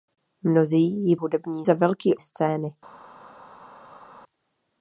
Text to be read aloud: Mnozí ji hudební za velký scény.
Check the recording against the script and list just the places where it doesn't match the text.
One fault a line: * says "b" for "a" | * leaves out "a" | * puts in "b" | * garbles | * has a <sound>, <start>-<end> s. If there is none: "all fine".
all fine